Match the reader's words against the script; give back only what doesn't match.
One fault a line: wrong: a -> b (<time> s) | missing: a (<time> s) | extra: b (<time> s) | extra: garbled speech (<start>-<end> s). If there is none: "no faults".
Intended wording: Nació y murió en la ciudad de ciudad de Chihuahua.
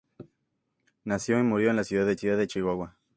no faults